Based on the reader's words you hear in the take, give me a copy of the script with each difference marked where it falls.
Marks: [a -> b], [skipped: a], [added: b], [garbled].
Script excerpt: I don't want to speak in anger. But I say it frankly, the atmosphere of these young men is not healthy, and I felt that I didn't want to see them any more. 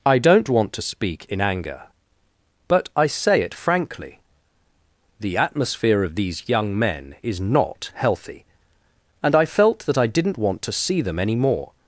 I don't want to speak in anger. But I say it frankly, the atmosphere of these young men is not healthy, and I felt that I didn't want to see them any more.